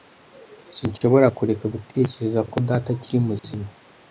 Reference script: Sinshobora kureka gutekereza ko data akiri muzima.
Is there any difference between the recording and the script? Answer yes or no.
no